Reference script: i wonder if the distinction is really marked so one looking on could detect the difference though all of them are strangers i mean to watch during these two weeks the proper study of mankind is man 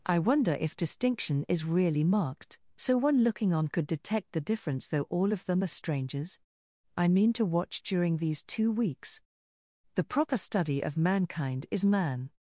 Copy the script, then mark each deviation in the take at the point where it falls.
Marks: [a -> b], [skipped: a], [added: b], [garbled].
i wonder if [skipped: the] distinction is really marked so one looking on could detect the difference though all of them are strangers i mean to watch during these two weeks the proper study of mankind is man